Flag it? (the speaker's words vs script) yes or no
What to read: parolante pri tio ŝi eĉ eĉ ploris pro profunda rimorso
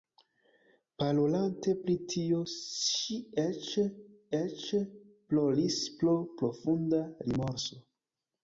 no